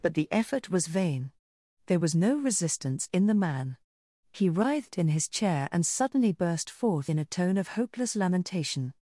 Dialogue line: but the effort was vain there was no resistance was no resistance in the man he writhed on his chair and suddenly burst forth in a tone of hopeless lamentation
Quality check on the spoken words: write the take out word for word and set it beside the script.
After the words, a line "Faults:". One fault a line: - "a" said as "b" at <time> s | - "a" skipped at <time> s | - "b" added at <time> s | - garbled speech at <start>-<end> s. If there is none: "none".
but the effort was vain there was no resistance in the man he writhed in his chair and suddenly burst forth in a tone of hopeless lamentation
Faults:
- "was no resistance" skipped at 3.1 s
- "on" said as "in" at 5.0 s